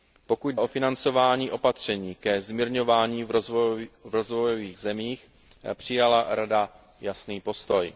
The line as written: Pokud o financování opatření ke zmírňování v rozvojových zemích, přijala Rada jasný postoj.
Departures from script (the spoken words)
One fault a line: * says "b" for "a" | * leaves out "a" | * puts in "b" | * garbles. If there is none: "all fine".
all fine